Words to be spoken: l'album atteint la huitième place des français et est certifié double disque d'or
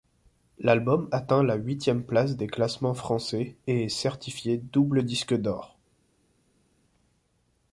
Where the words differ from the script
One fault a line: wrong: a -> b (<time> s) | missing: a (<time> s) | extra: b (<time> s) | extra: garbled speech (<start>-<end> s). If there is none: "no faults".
extra: classements (2.5 s)